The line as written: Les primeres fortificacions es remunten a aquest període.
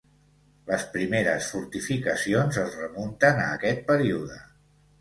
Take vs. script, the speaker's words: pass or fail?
pass